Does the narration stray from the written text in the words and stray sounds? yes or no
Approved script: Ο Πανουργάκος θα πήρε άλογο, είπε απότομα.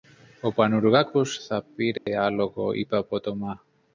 yes